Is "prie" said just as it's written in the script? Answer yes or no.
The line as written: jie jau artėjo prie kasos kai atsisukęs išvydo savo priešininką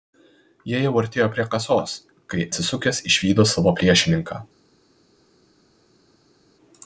yes